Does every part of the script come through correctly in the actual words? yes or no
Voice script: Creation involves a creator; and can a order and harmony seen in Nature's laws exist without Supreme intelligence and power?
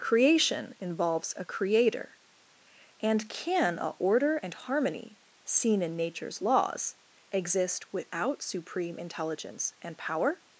yes